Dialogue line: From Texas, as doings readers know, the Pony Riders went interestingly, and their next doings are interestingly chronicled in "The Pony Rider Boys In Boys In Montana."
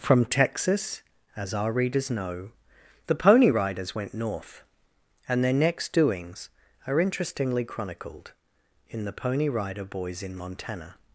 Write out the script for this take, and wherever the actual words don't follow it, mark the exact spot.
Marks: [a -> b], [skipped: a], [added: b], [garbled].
From Texas, as [doings -> our] readers know, the Pony Riders went [interestingly, -> north] and their next doings are interestingly chronicled in "The Pony Rider Boys In [skipped: Boys In] Montana."